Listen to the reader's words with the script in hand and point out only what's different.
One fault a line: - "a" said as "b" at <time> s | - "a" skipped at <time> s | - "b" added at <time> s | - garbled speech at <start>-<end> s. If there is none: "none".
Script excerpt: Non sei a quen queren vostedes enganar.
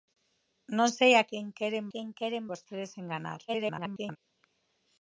- "quen queren" added at 1.9 s
- garbled speech at 3.5-4.2 s